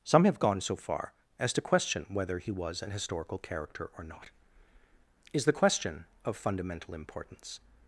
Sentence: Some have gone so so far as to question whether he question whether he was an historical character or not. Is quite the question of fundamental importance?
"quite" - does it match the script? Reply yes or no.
no